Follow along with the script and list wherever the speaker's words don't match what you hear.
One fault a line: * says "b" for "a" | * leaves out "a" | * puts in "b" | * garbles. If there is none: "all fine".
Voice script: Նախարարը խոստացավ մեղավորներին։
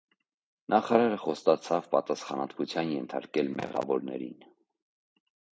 * puts in "պատասխանատվության ենթարկել"